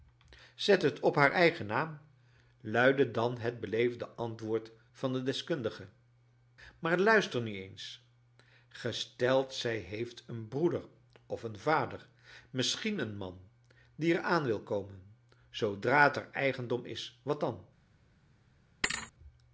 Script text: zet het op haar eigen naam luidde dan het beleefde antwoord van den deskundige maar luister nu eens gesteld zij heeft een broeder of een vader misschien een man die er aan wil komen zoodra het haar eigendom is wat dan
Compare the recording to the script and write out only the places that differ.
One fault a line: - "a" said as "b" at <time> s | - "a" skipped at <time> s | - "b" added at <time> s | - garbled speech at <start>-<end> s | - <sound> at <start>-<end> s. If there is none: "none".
- thud at 18.8-19.1 s